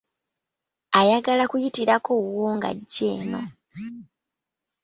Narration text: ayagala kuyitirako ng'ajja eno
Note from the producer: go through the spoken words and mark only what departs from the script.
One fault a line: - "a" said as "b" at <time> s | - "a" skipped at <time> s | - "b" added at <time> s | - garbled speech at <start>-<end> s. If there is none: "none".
- "wuwo" added at 2.2 s